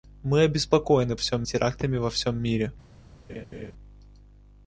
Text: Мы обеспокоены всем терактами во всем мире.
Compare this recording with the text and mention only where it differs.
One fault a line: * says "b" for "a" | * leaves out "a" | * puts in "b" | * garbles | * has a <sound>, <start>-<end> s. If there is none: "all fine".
* has a laugh, 3.3-3.7 s